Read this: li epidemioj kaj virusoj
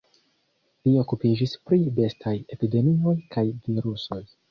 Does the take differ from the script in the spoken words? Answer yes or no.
yes